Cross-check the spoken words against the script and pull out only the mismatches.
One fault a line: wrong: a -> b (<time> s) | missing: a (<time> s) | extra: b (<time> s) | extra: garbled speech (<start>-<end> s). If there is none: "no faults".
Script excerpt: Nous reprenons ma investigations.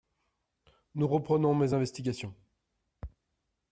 wrong: ma -> mes (1.5 s)